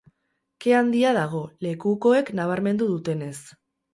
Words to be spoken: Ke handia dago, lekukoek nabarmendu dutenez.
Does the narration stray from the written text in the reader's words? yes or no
no